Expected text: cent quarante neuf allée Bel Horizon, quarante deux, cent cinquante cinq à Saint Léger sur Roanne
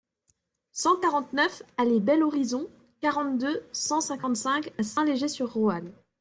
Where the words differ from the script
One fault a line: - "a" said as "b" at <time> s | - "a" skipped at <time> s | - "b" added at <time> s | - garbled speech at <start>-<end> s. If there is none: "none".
none